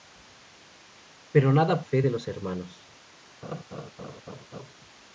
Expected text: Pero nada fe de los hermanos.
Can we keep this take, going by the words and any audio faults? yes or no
no